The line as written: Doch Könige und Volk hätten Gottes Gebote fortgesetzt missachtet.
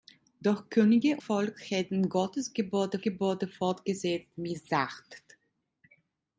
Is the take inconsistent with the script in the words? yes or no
yes